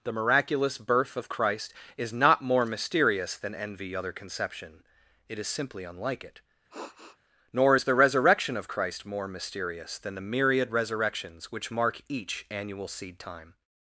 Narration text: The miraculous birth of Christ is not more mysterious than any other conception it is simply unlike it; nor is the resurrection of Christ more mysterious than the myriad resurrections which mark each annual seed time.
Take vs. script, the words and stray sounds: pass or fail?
fail